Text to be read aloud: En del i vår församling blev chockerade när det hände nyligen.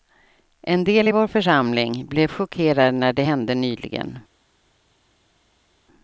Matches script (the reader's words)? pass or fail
pass